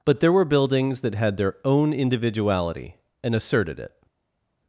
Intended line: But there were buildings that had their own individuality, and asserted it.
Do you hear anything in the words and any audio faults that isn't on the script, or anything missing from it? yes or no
no